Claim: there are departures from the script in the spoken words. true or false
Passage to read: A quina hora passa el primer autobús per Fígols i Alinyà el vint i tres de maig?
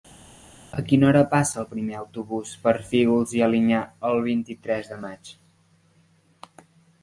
false